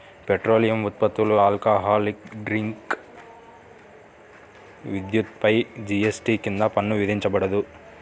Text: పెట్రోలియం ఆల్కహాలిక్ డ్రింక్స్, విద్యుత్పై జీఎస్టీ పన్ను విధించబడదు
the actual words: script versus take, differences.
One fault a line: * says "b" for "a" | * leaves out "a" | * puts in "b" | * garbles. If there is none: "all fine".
* puts in "ఉత్పత్తులు"
* puts in "కింద"